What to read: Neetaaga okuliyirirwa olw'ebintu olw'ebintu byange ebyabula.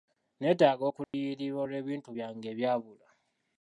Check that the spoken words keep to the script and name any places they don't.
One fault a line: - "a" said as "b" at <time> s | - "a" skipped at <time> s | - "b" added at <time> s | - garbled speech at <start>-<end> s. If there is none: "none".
- "olw'ebintu" skipped at 2.1 s